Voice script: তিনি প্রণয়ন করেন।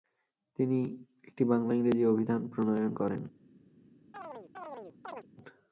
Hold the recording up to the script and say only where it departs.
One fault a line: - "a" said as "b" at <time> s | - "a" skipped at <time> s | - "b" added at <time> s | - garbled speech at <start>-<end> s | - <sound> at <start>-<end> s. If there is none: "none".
- "একটি বাংলা-ইংরেজি অভিধান" added at 1.2 s
- chirp at 4.1-5.3 s